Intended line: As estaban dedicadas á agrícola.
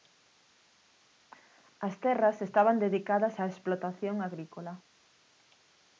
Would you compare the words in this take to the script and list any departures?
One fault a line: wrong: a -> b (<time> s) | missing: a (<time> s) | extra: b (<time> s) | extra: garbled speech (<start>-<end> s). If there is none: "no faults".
extra: terras (2.0 s)
extra: explotación (3.5 s)